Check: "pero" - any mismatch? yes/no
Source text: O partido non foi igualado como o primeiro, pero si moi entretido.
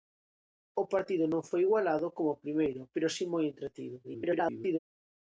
no